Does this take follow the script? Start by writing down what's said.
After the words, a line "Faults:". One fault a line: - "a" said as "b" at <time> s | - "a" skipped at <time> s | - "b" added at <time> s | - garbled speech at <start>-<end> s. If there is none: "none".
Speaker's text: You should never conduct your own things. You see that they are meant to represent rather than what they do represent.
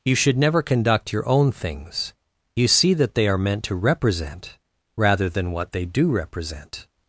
You should never conduct your own things. You see that they are meant to represent rather than what they do represent.
Faults:
none